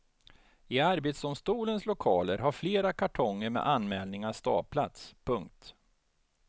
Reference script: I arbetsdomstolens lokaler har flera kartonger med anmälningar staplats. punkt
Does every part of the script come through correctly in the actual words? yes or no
yes